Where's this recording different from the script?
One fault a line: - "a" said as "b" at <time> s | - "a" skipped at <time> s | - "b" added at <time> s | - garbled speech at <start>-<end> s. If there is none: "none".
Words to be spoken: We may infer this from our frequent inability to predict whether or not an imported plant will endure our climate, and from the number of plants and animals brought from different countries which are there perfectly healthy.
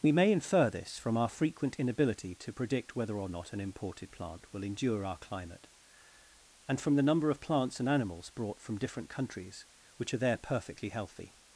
none